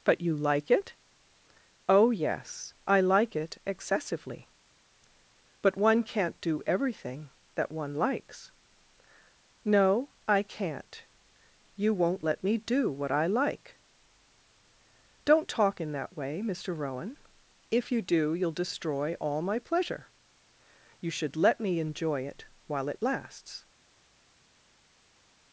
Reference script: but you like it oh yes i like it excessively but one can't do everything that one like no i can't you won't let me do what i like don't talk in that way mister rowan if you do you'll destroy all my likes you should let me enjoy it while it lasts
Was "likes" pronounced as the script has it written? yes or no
no